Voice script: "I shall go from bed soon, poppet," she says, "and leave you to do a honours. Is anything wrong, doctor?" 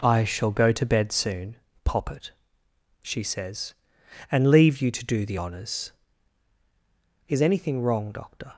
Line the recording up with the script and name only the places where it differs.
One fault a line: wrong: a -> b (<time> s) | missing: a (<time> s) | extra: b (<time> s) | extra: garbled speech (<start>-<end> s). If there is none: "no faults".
wrong: from -> to (0.7 s)
wrong: a -> the (5.2 s)